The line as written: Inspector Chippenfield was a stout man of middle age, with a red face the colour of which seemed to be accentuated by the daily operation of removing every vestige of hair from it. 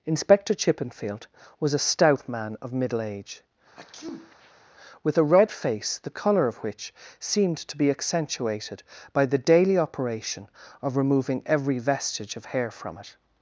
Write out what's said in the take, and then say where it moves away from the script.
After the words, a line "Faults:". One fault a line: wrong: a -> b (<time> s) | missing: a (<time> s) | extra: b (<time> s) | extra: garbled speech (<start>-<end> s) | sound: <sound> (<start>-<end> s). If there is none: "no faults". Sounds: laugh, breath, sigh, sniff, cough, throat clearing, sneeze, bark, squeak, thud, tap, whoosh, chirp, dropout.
Inspector Chippenfield was a stout man of middle age, with a red face the colour of which seemed to be accentuated by the daily operation of removing every vestige of hair from it.
Faults:
sound: sneeze (3.7-4.6 s)